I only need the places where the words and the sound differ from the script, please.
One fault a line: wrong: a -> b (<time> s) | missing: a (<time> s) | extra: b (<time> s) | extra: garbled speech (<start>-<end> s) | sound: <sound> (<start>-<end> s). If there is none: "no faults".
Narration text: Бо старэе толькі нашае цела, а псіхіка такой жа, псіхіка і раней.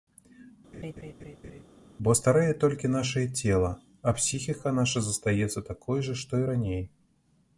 sound: laugh (0.7-1.6 s)
extra: наша застаецца (4.8 s)
wrong: псіхіка -> што (6.2 s)